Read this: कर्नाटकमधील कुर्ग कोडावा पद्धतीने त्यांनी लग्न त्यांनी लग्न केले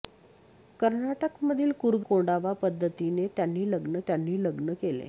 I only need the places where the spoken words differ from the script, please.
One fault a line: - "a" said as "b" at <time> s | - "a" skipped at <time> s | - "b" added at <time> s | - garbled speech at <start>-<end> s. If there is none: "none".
none